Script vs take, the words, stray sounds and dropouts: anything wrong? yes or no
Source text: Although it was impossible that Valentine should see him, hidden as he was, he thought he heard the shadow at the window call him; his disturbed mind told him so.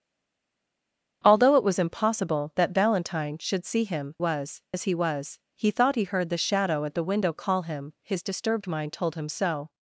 yes